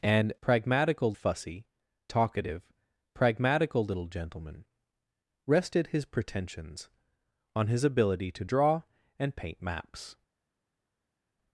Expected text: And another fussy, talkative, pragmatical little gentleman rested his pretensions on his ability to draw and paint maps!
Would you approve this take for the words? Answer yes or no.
no